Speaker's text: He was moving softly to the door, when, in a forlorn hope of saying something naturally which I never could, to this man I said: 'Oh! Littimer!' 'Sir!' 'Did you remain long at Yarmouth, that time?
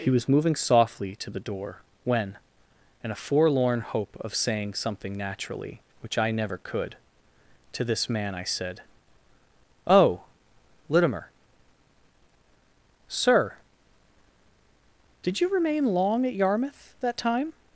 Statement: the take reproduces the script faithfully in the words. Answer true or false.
true